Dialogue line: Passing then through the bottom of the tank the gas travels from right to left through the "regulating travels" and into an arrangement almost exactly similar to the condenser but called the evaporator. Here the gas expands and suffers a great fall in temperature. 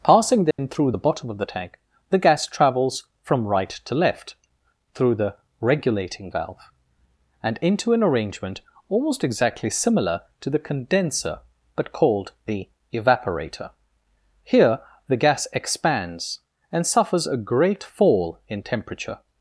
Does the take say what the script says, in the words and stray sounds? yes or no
no